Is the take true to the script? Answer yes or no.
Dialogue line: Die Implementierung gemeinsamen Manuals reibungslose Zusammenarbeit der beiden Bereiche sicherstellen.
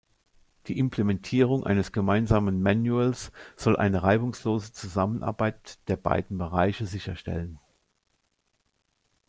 no